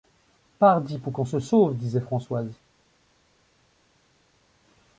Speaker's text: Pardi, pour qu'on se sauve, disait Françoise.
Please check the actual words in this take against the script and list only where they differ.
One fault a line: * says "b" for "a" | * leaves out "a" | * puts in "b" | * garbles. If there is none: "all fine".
all fine